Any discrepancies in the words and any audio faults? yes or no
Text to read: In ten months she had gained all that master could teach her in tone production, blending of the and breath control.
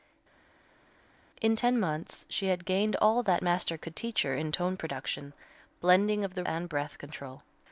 no